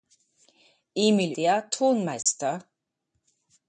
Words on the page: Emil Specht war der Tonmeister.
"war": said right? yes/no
no